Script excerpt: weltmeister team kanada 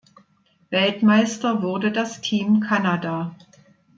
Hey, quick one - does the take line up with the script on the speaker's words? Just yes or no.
no